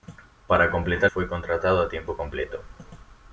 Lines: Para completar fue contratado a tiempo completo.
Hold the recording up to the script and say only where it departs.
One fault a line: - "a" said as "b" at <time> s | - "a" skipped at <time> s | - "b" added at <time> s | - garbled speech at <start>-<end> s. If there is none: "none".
none